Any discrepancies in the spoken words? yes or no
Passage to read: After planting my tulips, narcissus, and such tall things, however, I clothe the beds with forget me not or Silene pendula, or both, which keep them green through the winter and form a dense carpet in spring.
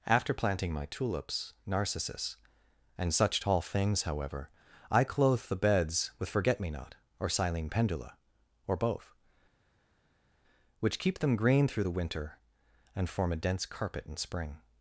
no